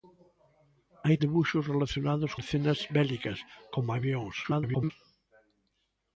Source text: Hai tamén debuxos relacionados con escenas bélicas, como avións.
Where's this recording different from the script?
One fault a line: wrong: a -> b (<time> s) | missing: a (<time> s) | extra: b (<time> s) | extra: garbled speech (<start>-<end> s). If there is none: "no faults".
missing: tamén (1.2 s)
missing: con (2.3 s)
extra: garbled speech (4.4-4.9 s)